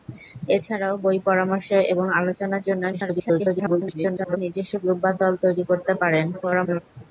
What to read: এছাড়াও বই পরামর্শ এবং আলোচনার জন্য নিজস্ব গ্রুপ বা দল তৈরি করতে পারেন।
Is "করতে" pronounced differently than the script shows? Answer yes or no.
no